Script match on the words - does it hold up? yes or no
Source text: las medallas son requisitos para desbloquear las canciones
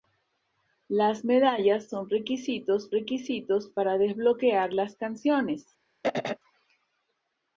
no